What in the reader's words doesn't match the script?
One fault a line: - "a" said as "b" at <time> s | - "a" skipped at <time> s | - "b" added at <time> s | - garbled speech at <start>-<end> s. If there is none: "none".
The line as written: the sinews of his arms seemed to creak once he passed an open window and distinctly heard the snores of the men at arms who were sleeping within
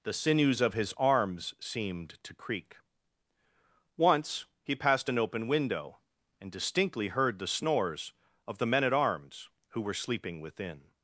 none